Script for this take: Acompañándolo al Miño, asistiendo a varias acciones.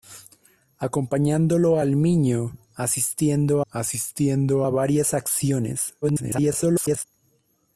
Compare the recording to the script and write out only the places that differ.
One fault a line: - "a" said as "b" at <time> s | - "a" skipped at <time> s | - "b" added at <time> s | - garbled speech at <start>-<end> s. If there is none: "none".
- "asistiendo" added at 3.7 s
- garbled speech at 6.0-7.0 s